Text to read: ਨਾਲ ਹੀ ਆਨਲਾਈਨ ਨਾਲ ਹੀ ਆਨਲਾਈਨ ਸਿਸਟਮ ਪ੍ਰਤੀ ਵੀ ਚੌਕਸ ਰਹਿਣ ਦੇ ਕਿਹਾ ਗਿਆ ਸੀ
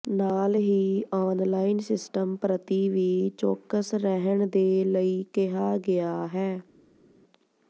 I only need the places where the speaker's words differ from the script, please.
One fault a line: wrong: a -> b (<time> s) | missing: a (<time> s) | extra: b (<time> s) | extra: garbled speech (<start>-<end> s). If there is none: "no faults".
missing: ਨਾਲ ਹੀ ਆਨਲਾਈਨ (1.8 s)
extra: ਲਈ (4.8 s)
wrong: ਸੀ -> ਹੈ (6.3 s)